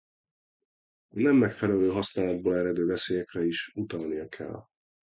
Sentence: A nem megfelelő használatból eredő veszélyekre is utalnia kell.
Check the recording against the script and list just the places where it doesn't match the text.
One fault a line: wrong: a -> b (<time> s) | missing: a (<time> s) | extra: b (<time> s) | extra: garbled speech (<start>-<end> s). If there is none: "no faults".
no faults